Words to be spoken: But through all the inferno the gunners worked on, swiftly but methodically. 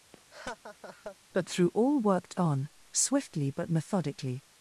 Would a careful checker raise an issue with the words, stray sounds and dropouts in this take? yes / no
yes